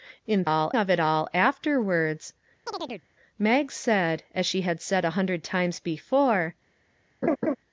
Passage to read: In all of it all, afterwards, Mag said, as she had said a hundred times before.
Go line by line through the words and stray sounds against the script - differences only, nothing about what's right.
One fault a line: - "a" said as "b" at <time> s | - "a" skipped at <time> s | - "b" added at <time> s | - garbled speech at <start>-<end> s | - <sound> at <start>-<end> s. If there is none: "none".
- chirp at 2.7-3.1 s
- laugh at 7.2-7.6 s